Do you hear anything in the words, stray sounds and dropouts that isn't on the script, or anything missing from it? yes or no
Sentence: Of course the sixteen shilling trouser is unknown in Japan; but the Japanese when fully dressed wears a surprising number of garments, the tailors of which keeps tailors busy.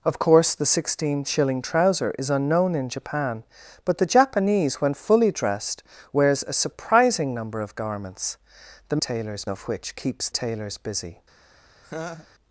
yes